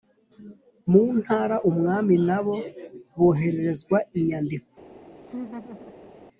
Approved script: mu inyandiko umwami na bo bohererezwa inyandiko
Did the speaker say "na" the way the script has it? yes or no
yes